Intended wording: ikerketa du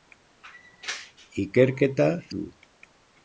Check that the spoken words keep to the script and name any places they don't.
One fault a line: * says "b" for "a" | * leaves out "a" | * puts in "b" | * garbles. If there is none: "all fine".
all fine